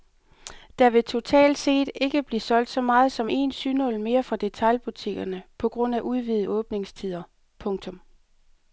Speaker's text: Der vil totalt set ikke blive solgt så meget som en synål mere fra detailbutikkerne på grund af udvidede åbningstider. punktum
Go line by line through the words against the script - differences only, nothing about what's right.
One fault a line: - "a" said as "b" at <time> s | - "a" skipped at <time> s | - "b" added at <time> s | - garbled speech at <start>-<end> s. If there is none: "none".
none